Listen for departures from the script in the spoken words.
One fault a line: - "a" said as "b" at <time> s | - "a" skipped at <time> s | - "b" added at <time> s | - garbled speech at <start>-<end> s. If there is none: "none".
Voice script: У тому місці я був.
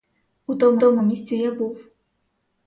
- "тому" added at 0.8 s